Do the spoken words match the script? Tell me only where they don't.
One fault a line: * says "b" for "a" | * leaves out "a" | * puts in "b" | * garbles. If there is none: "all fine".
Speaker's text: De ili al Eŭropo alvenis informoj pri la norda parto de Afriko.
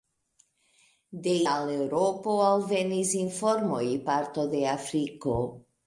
* leaves out "ili"
* leaves out "pri la norda"